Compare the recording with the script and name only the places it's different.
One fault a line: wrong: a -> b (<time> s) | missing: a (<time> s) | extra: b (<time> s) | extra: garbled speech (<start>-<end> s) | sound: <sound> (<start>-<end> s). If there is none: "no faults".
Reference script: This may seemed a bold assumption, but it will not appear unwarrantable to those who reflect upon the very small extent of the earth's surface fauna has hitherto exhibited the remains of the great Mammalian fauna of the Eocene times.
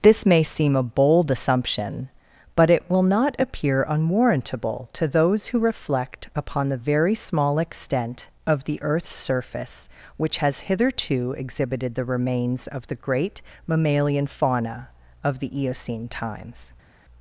wrong: seemed -> seem (0.4 s)
wrong: fauna -> which (10.2 s)